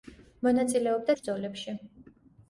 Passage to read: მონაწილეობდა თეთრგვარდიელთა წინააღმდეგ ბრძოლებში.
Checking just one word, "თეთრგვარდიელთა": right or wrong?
wrong